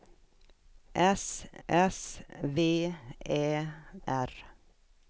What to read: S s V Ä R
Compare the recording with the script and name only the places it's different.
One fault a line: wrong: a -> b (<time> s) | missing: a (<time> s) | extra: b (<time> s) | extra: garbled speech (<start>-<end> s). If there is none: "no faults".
no faults